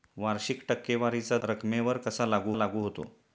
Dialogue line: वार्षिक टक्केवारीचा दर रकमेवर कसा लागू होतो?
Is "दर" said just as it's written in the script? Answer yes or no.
no